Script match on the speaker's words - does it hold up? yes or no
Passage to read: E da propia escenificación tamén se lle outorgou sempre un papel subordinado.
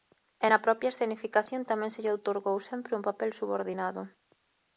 no